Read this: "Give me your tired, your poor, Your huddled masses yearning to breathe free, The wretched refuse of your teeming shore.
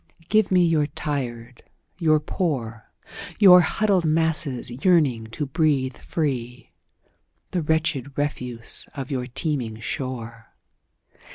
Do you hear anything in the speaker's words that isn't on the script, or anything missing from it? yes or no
no